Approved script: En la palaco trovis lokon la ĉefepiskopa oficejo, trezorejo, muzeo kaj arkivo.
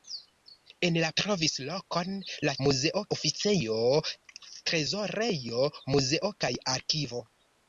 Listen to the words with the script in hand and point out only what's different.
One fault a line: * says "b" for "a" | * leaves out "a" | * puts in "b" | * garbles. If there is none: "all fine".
* leaves out "palaco"
* says "muzeo" for "ĉefepiskopa"